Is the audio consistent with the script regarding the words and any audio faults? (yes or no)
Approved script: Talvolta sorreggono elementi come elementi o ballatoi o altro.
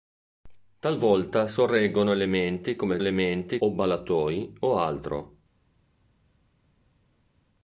yes